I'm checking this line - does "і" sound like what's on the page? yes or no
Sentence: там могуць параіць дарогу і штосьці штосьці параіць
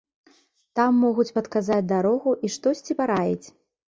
yes